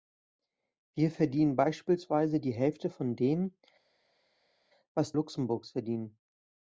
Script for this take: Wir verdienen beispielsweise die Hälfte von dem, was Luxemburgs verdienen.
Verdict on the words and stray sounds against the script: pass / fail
pass